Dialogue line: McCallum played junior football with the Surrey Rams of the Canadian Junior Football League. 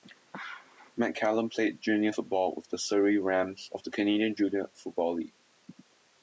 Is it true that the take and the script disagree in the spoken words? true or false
false